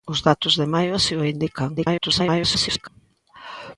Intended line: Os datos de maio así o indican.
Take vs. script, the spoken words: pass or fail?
fail